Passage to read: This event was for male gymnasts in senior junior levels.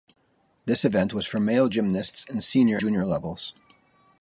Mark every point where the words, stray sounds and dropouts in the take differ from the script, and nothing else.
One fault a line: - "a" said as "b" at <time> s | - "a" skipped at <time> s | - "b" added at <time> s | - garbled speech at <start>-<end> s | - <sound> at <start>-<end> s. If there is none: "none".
none